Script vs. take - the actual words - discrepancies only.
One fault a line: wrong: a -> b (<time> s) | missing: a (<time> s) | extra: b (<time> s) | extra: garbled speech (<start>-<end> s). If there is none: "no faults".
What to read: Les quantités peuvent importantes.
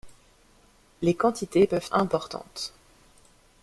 no faults